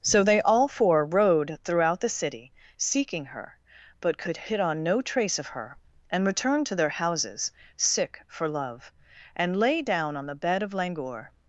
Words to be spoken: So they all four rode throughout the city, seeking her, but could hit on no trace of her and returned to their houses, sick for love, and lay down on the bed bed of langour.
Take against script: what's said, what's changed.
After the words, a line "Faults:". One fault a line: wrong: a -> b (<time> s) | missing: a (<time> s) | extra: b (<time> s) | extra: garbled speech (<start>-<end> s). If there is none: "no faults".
So they all four rode throughout the city, seeking her, but could hit on no trace of her and returned to their houses, sick for love, and lay down on the bed of langour.
Faults:
missing: bed (10.6 s)